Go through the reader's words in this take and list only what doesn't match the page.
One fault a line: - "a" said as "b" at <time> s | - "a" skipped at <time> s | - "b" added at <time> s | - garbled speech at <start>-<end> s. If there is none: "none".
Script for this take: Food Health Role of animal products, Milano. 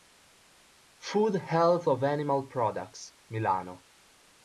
- "Role" skipped at 1.9 s